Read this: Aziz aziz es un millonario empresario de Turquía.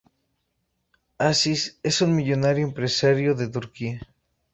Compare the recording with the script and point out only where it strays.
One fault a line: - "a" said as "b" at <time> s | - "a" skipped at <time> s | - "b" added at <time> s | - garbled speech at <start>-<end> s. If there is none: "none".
- "aziz" skipped at 1.8 s